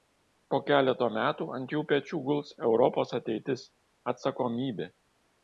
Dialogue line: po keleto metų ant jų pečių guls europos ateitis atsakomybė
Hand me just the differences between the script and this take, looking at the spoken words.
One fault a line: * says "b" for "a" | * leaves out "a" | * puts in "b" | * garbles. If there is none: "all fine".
all fine